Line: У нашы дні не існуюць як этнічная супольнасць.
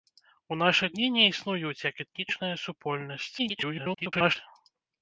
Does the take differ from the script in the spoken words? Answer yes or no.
yes